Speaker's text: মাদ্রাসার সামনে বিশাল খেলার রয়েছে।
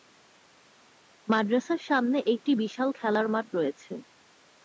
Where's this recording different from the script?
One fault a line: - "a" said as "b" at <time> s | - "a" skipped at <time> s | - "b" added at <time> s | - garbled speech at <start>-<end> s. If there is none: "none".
- "একটি" added at 2.3 s
- "মাঠ" added at 3.3 s